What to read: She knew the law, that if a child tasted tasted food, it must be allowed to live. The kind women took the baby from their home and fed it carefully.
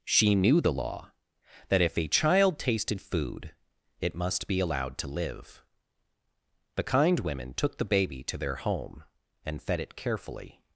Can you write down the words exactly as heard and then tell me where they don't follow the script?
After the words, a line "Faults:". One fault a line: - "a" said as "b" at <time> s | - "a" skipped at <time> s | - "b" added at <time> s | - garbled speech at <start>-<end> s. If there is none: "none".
She knew the law, that if a child tasted food, it must be allowed to live. The kind women took the baby to their home and fed it carefully.
Faults:
- "tasted" skipped at 3.0 s
- "from" said as "to" at 8.2 s